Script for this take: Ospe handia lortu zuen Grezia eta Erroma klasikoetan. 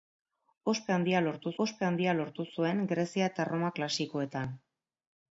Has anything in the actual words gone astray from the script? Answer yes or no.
yes